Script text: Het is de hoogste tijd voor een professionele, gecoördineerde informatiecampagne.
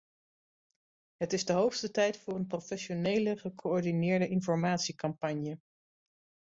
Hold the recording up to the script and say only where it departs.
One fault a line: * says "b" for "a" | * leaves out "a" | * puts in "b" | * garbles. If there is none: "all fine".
all fine